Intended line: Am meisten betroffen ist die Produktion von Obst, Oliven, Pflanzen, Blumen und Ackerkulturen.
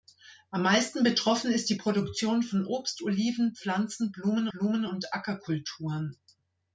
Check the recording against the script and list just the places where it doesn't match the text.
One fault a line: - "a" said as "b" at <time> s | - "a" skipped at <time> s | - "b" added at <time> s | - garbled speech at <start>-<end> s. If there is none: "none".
- "Blumen" added at 4.5 s